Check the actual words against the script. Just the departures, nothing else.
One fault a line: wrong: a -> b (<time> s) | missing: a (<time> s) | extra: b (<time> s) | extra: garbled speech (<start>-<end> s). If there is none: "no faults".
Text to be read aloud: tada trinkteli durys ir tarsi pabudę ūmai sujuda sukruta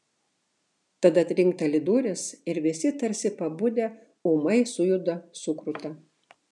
extra: visi (2.7 s)